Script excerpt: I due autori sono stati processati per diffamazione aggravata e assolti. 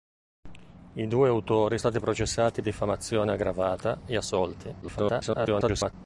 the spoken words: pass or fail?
fail